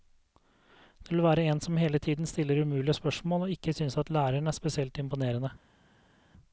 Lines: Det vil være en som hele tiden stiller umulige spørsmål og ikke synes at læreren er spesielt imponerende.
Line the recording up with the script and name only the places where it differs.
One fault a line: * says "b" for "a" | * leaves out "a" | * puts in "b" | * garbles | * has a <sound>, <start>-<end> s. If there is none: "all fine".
all fine